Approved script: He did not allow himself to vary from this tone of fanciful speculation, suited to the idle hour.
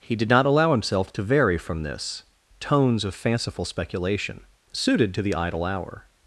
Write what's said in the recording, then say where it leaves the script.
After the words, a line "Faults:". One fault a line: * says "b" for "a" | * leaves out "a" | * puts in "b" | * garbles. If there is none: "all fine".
He did not allow himself to vary from this tones of fanciful speculation, suited to the idle hour.
Faults:
* says "tones" for "tone"